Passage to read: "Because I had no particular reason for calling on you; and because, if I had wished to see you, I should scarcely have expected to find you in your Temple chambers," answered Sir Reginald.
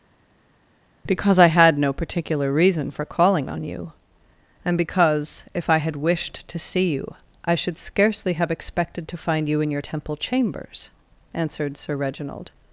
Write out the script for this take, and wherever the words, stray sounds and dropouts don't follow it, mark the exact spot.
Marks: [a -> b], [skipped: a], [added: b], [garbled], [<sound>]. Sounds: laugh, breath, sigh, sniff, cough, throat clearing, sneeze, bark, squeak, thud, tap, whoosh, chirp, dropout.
"Because I had no particular reason for calling on you; and because, if I had wished to see you, I should scarcely have expected to find you in your Temple chambers," answered Sir Reginald.